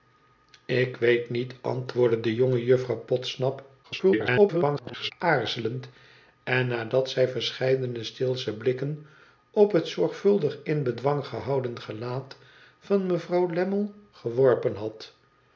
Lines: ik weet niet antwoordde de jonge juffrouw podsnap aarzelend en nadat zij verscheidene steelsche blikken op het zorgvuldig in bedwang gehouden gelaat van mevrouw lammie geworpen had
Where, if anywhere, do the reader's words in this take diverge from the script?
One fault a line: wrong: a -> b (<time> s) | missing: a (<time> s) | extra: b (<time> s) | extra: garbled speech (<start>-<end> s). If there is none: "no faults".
extra: garbled speech (3.8-5.1 s)